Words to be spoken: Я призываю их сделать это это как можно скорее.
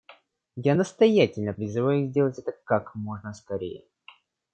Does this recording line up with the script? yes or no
no